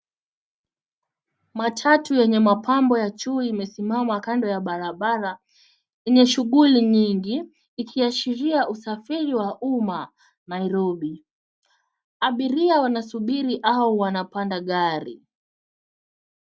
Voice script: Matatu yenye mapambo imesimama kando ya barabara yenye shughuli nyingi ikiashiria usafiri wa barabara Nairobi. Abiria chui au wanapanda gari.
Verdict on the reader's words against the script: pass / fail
fail